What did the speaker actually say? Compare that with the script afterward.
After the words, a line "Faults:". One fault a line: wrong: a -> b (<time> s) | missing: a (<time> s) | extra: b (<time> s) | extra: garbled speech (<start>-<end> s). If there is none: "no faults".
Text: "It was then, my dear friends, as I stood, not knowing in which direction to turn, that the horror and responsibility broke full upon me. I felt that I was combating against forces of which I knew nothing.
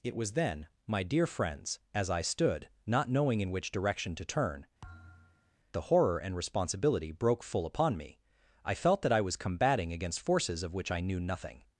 "It was then, my dear friends, as I stood, not knowing in which direction to turn, the horror and responsibility broke full upon me. I felt that I was combating against forces of which I knew nothing.
Faults:
missing: that (4.7 s)